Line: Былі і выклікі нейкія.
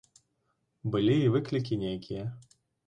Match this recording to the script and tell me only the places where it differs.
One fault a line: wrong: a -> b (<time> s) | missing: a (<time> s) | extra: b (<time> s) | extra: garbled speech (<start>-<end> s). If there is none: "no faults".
no faults